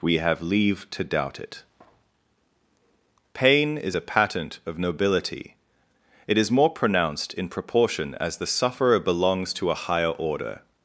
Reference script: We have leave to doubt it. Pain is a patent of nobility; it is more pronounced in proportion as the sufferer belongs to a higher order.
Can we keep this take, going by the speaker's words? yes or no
yes